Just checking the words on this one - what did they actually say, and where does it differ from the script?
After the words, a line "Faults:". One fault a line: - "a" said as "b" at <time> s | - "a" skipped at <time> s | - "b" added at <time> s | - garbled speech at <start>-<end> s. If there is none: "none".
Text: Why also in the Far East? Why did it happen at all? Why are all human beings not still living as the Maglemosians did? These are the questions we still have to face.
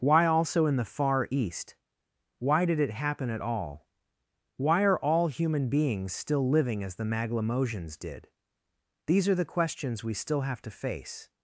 Why also in the Far East? Why did it happen at all? Why are all human beings still living as the Maglemosians did? These are the questions we still have to face.
Faults:
- "not" skipped at 6.1 s